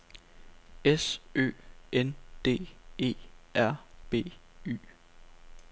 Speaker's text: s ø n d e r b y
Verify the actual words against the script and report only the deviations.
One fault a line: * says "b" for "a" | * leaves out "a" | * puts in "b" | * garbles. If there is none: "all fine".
all fine